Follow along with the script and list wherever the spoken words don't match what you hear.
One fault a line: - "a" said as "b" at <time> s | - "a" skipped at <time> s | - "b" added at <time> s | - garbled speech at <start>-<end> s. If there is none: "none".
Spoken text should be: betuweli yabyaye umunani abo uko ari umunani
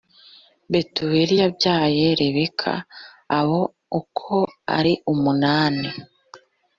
- "umunani" said as "rebeka" at 2.2 s